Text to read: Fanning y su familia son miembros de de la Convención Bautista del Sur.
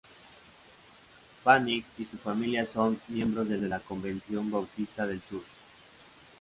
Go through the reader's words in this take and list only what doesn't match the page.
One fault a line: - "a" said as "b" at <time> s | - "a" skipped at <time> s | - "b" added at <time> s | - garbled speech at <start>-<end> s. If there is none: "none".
none